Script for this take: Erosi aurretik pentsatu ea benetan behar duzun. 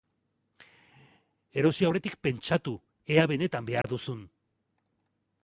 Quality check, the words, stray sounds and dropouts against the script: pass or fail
fail